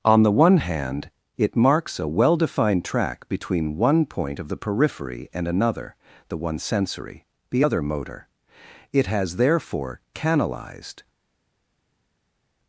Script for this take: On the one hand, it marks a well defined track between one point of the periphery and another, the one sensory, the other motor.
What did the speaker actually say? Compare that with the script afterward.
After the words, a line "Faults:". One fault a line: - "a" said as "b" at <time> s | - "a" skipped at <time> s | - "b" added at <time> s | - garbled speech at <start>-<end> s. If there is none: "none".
On the one hand, it marks a well defined track between one point of the periphery and another, the one sensory, the other motor. It has therefore canalized
Faults:
- "It has therefore canalized" added at 8.9 s